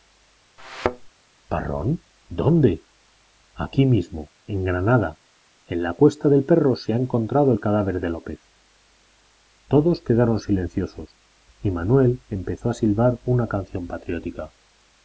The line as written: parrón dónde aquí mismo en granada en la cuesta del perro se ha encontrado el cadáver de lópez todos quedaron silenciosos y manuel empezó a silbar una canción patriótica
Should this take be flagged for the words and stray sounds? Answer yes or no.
yes